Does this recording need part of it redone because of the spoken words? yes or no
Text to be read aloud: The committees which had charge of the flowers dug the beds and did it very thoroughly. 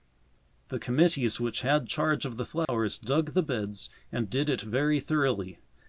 no